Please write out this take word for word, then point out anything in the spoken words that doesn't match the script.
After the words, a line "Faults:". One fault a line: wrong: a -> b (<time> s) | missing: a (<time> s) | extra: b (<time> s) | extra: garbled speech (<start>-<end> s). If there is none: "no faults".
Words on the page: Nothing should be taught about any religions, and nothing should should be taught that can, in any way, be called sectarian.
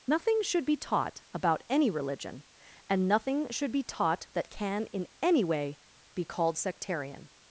Nothing should be taught about any religion, and nothing should be taught that can, in any way, be called sectarian.
Faults:
wrong: religions -> religion (1.9 s)
missing: should (3.7 s)